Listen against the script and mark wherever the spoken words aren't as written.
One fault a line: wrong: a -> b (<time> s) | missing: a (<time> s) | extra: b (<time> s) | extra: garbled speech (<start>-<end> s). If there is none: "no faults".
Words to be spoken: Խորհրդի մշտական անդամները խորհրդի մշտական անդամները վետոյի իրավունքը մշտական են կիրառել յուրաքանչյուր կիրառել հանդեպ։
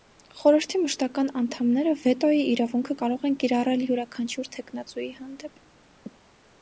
missing: խորհրդի մշտական անդամները (2.0 s)
wrong: մշտական -> կարող (3.0 s)
wrong: կիրառել -> թեկնածուի (4.6 s)